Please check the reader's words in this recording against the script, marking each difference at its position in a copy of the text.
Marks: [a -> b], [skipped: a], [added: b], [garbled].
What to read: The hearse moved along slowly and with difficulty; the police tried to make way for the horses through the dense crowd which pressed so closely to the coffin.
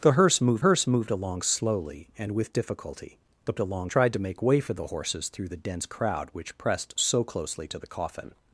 The hearse moved [added: hearse moved] along slowly and with difficulty; the [police -> along] tried to make way for the horses through the dense crowd which pressed so closely to the coffin.